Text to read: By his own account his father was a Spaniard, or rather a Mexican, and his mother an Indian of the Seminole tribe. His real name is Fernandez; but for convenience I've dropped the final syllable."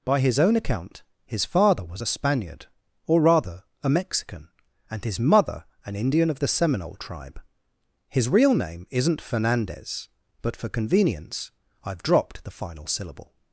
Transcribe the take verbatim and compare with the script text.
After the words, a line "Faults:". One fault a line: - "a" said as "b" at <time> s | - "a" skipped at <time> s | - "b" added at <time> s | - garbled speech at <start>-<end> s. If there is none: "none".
By his own account his father was a Spaniard, or rather a Mexican, and his mother an Indian of the Seminole tribe. His real name isn't Fernandez; but for convenience I've dropped the final syllable."
Faults:
- "is" said as "isn't" at 8.9 s